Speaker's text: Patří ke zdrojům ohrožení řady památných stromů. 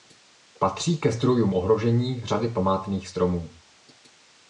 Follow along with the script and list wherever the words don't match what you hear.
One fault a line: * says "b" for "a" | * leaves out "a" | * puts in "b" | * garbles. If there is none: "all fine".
all fine